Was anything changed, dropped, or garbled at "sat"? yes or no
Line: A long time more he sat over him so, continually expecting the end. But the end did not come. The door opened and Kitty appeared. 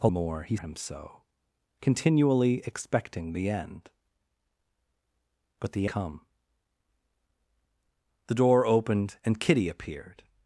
yes